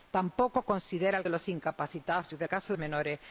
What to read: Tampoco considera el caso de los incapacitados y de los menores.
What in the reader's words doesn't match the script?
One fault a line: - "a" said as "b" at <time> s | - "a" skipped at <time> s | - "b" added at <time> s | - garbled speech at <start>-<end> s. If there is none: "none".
- "caso" skipped at 1.3 s
- "los" said as "caso" at 2.5 s